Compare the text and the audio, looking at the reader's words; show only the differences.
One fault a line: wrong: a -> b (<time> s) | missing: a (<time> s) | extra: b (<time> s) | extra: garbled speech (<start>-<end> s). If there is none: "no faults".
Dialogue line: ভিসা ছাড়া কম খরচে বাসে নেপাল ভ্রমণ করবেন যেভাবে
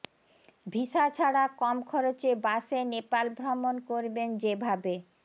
no faults